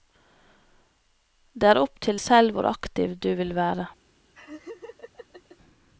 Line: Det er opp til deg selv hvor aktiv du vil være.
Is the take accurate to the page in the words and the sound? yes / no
no